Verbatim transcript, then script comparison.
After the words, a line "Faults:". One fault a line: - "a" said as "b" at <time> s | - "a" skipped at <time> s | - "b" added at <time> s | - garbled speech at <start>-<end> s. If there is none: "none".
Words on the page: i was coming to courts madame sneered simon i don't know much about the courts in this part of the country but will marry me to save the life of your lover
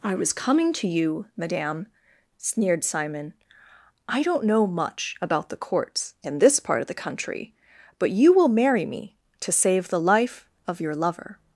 i was coming to you madame sneered simon i don't know much about the courts in this part of the country but you will marry me to save the life of your lover
Faults:
- "courts" said as "you" at 0.9 s
- "you" added at 8.1 s